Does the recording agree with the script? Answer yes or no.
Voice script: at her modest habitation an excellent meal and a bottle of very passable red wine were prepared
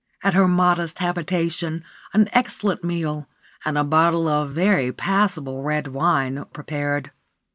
no